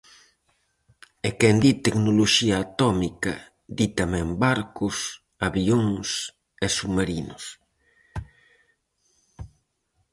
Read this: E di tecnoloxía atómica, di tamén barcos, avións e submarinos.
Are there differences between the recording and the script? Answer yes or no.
yes